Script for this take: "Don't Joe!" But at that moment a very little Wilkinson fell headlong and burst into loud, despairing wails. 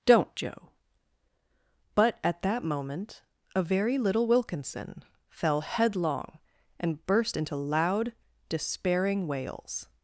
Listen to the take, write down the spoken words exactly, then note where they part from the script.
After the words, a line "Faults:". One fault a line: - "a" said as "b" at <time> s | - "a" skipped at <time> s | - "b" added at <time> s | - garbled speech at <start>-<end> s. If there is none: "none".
"Don't Joe!" But at that moment a very little Wilkinson fell headlong and burst into loud, despairing wails.
Faults:
none